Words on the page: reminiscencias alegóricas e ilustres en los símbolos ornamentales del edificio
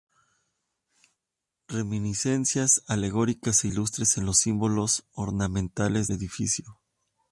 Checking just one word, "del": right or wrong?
wrong